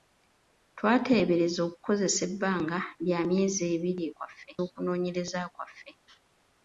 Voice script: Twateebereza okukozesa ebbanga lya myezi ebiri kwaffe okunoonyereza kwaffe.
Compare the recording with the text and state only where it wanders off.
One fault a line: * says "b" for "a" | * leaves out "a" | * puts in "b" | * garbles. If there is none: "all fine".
all fine